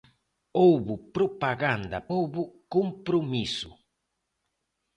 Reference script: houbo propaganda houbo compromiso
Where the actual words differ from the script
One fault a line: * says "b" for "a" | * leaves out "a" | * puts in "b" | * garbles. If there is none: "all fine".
all fine